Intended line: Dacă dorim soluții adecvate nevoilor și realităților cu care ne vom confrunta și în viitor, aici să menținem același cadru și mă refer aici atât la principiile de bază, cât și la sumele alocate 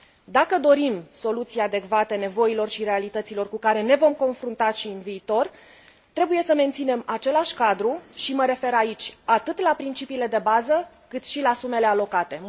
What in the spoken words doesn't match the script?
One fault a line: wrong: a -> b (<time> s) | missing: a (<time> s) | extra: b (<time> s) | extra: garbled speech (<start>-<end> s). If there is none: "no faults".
wrong: aici -> trebuie (6.1 s)